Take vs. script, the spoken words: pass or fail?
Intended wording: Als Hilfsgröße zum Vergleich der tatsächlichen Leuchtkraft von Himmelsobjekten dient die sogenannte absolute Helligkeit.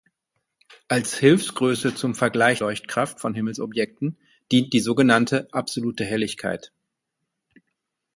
fail